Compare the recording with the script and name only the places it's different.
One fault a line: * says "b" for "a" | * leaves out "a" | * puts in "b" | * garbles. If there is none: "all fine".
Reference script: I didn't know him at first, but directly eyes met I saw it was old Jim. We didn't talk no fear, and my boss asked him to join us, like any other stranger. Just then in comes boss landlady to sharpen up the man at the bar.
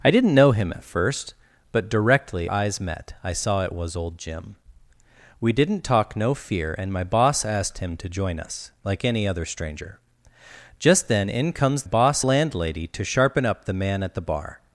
all fine